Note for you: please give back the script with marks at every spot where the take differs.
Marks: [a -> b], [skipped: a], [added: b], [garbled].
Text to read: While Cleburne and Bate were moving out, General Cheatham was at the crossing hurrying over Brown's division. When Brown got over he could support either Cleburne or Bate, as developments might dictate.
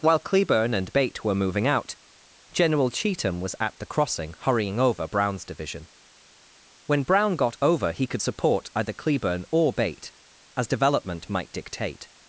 While Cleburne and Bate were moving out, General Cheatham was at the crossing hurrying over Brown's division. When Brown got over he could support either Cleburne or Bate, as [developments -> development] might dictate.